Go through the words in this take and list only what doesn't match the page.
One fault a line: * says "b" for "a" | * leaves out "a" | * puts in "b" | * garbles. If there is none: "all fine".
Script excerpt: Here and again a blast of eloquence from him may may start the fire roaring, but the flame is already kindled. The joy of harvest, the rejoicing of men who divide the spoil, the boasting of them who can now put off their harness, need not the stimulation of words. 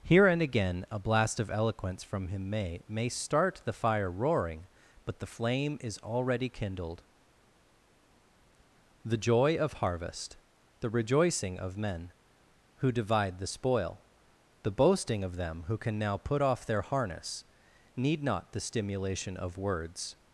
all fine